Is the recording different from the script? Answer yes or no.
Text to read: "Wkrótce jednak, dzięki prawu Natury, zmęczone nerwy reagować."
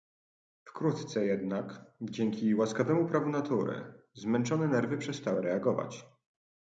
yes